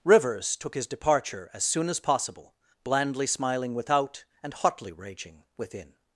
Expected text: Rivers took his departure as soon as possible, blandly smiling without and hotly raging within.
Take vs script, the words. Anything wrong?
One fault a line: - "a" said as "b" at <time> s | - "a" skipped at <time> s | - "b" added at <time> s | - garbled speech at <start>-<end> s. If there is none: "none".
none